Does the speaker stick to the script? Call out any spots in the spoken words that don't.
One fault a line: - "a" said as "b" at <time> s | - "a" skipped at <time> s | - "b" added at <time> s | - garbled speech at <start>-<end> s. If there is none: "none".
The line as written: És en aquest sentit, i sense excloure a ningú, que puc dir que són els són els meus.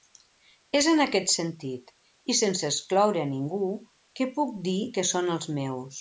- "són els" skipped at 5.5 s